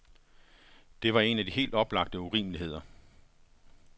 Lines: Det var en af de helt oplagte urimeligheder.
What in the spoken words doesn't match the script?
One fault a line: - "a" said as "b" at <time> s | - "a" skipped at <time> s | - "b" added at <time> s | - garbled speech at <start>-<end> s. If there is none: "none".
none